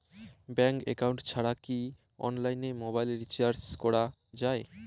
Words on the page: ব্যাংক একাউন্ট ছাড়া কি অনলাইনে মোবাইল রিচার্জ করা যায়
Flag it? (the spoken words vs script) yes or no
no